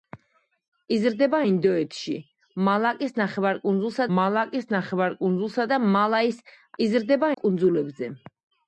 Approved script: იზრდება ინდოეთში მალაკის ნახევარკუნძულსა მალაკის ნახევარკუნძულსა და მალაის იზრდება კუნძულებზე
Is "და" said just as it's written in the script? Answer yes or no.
yes